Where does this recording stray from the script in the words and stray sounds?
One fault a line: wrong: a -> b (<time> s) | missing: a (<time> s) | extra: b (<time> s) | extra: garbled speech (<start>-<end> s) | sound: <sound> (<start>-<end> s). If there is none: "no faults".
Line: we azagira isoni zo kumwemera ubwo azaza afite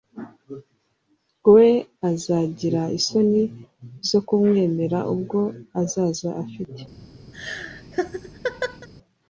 sound: laugh (7.3-8.9 s)